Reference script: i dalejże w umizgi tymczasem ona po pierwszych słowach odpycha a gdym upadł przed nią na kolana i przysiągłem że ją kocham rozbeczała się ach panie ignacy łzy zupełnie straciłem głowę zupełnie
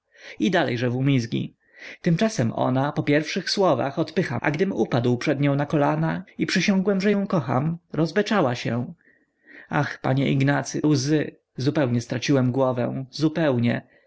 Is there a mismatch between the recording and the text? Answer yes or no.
no